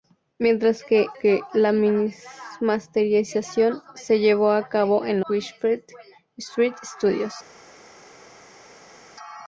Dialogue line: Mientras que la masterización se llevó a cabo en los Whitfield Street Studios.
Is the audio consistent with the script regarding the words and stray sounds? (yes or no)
no